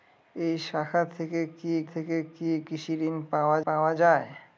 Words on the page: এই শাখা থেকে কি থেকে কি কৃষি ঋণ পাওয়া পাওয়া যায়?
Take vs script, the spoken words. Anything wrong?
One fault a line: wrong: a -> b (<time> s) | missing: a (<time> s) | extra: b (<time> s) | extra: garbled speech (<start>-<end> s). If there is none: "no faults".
no faults